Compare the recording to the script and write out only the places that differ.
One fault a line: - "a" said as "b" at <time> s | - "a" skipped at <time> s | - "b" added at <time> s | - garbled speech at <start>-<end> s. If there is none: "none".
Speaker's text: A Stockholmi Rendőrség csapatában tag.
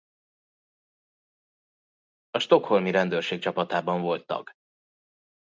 - "volt" added at 4.0 s